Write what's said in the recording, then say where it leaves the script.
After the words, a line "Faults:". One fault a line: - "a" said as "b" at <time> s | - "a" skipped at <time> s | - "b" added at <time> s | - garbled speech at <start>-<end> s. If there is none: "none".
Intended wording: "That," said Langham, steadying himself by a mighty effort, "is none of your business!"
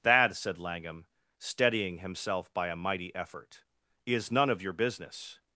"That," said Langham, steadying himself by a mighty effort, "is none of your business!"
Faults:
none